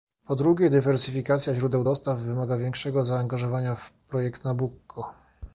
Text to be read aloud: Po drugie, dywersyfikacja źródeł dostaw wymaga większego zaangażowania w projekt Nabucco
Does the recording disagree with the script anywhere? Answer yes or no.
no